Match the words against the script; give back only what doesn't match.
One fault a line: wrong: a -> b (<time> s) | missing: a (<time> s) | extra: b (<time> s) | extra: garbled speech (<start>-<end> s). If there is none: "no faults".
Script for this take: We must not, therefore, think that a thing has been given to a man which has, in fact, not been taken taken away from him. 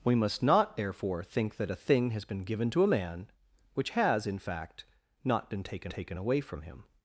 no faults